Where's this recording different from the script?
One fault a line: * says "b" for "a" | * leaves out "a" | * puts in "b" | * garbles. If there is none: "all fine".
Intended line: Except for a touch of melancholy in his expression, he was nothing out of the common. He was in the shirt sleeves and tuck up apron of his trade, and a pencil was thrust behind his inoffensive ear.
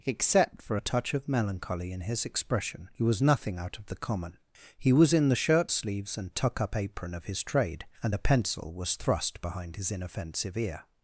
all fine